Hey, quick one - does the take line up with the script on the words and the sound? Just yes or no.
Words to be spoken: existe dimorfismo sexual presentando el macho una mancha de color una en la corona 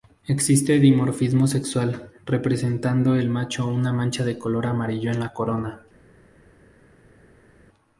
no